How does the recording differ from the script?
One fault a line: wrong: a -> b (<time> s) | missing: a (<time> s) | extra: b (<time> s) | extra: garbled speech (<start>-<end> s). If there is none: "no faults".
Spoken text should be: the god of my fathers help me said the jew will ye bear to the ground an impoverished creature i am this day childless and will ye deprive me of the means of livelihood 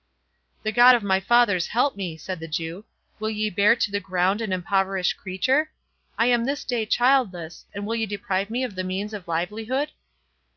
no faults